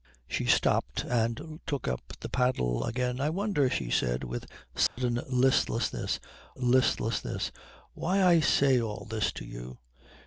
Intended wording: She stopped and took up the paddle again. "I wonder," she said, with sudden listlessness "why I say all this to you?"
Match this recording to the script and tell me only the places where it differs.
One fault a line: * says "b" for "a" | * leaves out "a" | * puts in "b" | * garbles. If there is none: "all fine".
* puts in "listlessness"